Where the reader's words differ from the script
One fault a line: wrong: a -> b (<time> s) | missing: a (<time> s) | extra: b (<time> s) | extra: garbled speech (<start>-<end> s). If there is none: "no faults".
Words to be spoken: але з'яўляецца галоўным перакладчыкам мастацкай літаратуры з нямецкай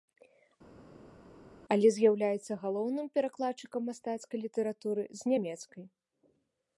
no faults